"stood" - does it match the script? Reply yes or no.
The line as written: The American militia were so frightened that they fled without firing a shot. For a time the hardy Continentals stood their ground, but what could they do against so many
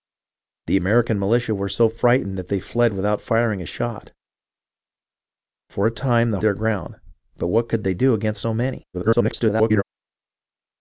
no